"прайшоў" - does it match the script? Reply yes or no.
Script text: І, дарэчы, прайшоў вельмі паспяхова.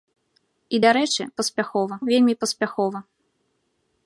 no